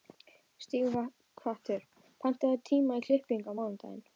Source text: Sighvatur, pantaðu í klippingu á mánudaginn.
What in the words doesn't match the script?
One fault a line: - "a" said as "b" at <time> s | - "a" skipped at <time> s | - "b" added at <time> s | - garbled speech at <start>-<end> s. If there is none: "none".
- "tíma" added at 2.7 s